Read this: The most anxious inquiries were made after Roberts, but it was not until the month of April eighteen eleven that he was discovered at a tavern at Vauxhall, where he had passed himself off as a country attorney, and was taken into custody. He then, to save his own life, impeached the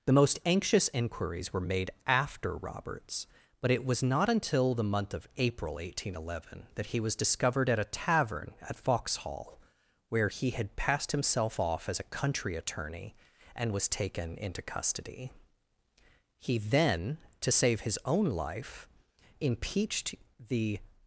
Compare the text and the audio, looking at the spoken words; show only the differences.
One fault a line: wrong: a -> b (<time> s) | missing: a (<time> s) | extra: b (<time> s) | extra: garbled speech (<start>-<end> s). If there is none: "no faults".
no faults